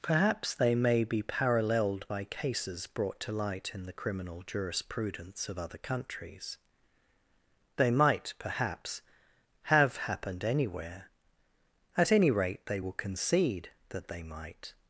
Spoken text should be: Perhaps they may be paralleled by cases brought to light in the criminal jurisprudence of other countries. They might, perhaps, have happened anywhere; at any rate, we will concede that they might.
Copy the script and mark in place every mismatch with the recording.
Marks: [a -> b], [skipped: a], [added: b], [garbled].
Perhaps they may be paralleled by cases brought to light in the criminal jurisprudence of other countries. They might, perhaps, have happened anywhere; at any rate, [we -> they] will concede that they might.